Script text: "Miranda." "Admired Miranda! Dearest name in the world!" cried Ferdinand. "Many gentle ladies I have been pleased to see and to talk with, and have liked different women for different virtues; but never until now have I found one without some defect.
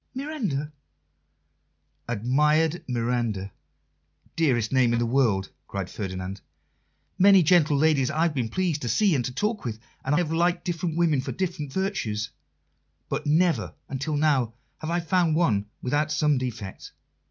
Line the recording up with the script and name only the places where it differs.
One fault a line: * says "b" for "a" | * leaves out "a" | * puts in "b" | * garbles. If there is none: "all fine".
all fine